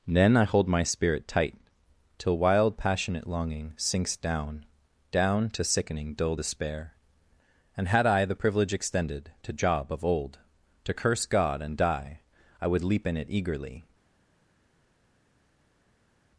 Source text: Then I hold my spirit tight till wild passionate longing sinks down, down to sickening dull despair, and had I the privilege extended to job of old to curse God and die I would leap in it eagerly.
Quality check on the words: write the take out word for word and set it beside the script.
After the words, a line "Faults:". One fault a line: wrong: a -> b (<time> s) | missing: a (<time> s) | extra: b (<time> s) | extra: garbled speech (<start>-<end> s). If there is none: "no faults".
Then I hold my spirit tight till wild passionate longing sinks down, down to sickening dull despair, and had I the privilege extended to job of old to curse God and die I would leap in it eagerly.
Faults:
no faults